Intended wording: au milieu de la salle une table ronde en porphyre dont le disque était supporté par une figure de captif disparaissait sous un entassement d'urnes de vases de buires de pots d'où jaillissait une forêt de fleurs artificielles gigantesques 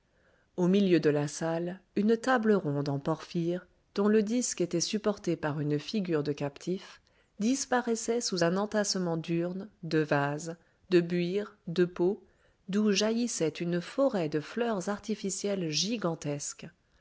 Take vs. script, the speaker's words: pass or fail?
pass